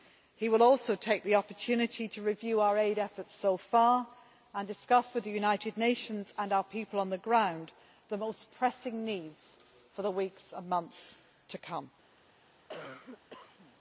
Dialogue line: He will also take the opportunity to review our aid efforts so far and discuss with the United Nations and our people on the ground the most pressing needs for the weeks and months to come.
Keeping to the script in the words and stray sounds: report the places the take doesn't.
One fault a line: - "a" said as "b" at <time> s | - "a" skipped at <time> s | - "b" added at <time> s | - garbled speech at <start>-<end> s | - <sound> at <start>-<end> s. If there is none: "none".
- cough at 12.7-13.8 s